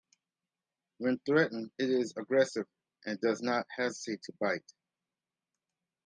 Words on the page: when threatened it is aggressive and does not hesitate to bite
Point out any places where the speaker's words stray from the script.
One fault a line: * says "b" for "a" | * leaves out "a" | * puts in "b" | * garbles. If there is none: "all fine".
all fine